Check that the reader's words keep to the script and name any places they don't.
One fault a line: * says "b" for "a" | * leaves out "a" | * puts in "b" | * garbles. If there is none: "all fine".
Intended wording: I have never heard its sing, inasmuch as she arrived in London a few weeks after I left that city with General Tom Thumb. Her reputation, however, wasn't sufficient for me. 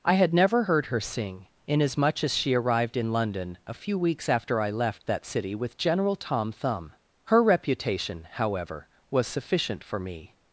* says "had" for "have"
* says "her" for "its"
* says "was" for "wasn't"